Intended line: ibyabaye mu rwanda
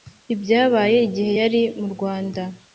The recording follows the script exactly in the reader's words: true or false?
false